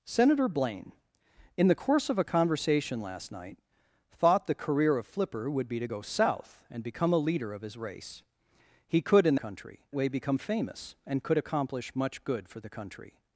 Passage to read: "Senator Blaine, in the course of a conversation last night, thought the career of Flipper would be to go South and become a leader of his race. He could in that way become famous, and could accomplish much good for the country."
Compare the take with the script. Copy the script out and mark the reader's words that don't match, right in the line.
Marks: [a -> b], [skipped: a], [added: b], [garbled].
"Senator Blaine, in the course of a conversation last night, thought the career of Flipper would be to go South and become a leader of his race. He could in [that -> country] way become famous, and could accomplish much good for the country."